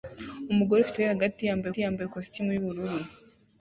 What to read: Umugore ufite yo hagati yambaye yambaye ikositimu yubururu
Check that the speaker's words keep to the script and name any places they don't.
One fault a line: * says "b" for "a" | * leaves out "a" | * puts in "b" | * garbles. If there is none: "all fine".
all fine